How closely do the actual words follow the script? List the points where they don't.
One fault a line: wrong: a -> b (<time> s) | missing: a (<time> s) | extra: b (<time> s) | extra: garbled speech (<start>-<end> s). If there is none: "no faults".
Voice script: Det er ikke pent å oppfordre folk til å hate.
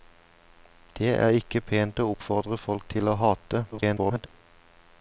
extra: garbled speech (3.7-4.3 s)